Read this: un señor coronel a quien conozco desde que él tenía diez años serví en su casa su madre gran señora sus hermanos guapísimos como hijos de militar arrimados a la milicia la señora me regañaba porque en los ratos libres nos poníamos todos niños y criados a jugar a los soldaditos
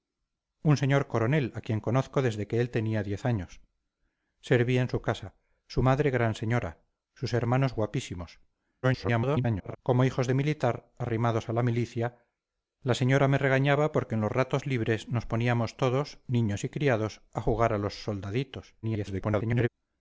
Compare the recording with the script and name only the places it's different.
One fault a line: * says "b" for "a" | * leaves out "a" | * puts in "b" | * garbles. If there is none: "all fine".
* garbles
* garbles